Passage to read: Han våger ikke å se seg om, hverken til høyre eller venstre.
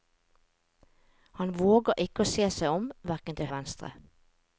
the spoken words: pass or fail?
fail